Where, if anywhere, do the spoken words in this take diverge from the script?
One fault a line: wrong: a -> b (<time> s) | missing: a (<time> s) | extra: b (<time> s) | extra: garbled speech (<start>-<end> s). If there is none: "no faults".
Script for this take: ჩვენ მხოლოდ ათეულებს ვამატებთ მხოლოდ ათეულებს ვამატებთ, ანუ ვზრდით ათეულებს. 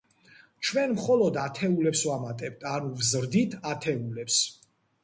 missing: მხოლოდ ათეულებს ვამატებთ (2.7 s)